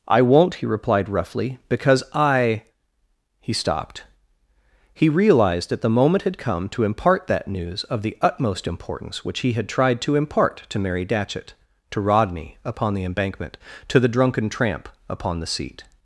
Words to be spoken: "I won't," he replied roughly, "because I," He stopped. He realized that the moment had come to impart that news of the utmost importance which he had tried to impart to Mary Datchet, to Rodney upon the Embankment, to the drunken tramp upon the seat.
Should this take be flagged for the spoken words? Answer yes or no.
no